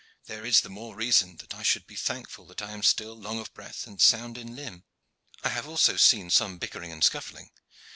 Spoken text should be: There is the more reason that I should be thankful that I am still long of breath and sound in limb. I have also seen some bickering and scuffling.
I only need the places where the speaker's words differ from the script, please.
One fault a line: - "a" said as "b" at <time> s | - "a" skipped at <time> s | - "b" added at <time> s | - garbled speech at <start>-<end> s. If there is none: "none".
none